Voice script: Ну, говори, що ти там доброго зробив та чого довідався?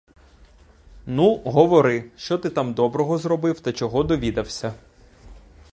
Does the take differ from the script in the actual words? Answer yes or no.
no